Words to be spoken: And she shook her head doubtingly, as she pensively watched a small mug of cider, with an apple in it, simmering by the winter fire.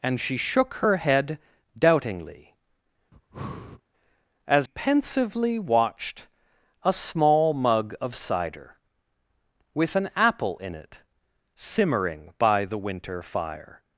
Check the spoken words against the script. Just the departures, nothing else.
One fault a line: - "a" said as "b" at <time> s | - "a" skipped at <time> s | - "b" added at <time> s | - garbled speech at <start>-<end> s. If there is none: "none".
- "she" skipped at 4.7 s